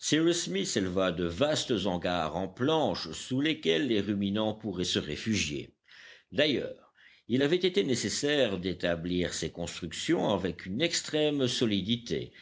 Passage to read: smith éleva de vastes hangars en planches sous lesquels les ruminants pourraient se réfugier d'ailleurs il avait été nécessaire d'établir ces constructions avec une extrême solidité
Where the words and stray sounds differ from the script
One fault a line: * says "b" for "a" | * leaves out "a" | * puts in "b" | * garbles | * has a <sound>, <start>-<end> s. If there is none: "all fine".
all fine